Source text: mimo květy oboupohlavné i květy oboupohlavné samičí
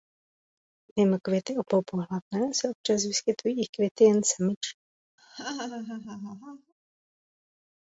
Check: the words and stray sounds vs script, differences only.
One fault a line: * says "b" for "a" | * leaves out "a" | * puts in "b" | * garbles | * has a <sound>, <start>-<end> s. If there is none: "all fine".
* puts in "se občas vyskytují"
* says "jen" for "oboupohlavné"
* has a laugh, 5.2-6.7 s